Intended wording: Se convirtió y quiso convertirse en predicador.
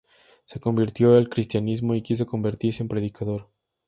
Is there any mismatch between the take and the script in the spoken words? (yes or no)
yes